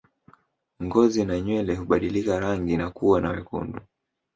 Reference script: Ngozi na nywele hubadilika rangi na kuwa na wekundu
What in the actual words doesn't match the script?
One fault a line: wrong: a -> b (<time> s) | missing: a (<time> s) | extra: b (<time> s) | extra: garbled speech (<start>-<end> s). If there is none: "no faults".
no faults